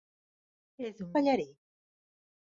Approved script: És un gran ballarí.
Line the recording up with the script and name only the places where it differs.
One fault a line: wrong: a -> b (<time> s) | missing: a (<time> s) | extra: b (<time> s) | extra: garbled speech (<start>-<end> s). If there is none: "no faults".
missing: gran (1.1 s)